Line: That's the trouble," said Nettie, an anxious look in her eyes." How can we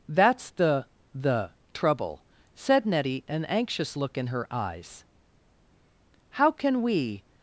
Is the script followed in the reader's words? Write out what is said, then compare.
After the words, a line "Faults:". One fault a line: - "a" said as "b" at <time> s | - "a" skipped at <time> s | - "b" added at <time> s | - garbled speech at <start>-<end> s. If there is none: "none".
That's the the trouble," said Nettie, an anxious look in her eyes." How can we
Faults:
- "the" added at 1.1 s